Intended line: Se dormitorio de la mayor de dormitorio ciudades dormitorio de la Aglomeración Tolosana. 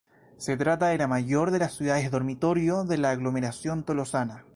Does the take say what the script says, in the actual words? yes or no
no